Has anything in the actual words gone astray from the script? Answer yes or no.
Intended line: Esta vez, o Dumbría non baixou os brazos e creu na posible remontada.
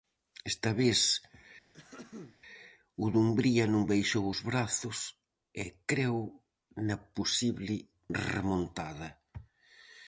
no